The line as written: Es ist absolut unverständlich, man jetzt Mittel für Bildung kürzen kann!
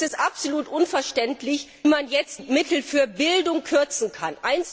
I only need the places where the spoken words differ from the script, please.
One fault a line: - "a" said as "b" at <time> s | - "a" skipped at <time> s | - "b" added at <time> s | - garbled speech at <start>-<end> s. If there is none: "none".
none